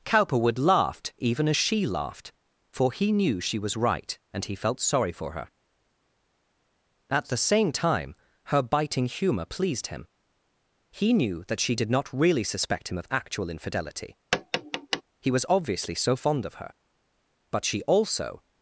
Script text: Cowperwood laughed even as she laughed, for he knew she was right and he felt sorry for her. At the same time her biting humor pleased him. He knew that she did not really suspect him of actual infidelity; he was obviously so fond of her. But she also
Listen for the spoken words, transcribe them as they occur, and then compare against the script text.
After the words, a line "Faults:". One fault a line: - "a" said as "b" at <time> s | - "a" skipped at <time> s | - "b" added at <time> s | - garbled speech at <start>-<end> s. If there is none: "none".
Cowperwood laughed even as she laughed, for he knew she was right and he felt sorry for her. At the same time her biting humor pleased him. He knew that she did not really suspect him of actual infidelity; he was obviously so fond of her. But she also
Faults:
none